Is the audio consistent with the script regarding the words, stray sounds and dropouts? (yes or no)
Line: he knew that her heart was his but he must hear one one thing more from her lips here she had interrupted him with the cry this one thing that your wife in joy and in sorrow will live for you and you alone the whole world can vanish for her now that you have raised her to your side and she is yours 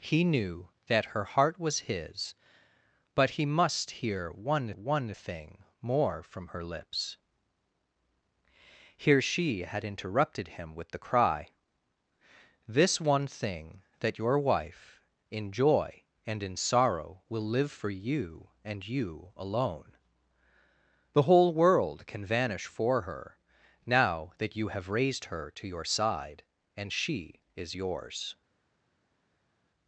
yes